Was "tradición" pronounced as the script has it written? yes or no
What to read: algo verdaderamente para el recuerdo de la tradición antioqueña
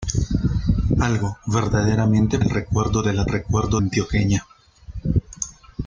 no